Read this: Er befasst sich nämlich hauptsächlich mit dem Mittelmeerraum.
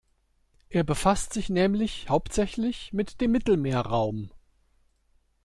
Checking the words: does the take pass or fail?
pass